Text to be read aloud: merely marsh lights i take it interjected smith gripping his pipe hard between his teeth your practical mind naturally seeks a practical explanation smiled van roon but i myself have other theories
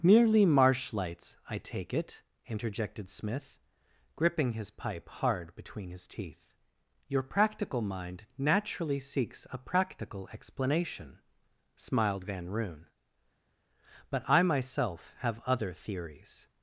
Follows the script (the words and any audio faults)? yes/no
yes